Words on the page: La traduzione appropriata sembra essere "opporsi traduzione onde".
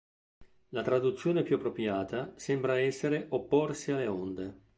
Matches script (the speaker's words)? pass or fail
fail